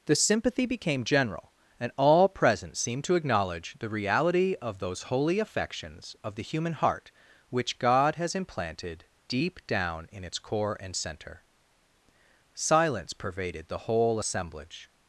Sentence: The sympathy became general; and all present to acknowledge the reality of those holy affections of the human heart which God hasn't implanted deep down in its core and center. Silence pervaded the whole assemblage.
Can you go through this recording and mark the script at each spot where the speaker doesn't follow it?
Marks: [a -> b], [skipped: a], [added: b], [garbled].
The sympathy became general; and all present [added: seemed] to acknowledge the reality of those holy affections of the human heart which God [hasn't -> has] implanted deep down in its core and center. Silence pervaded the whole assemblage.